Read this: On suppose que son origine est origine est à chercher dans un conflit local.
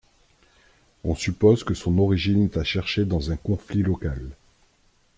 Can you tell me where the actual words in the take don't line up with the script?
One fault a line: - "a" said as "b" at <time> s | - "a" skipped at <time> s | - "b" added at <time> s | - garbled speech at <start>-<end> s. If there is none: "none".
- "origine est" skipped at 2.6 s